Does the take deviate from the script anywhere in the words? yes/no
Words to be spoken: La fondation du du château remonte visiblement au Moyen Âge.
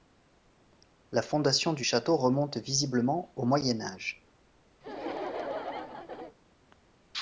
yes